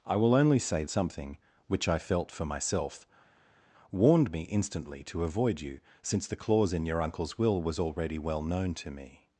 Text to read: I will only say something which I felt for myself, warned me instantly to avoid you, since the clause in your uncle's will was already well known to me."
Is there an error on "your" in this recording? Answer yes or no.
no